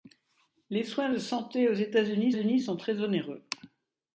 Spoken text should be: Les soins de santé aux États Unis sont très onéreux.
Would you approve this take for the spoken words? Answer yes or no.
no